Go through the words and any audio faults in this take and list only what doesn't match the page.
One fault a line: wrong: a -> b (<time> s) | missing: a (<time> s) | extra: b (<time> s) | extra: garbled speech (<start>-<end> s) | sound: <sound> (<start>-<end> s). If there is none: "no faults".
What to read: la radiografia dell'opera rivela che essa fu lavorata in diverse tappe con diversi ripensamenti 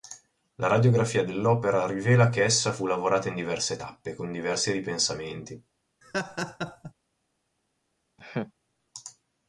sound: laugh (6.0-6.9 s)
sound: laugh (8.2-8.5 s)